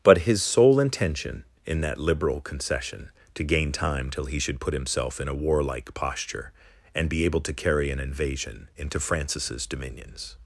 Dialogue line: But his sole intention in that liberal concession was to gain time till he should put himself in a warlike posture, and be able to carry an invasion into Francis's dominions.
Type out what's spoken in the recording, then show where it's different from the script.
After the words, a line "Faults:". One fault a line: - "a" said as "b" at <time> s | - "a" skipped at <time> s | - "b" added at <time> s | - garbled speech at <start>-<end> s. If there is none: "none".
But his sole intention in that liberal concession to gain time till he should put himself in a warlike posture, and be able to carry an invasion into Francis's dominions.
Faults:
- "was" skipped at 3.1 s